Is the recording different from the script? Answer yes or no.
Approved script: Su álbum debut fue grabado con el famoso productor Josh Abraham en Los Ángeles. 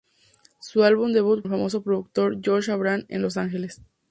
yes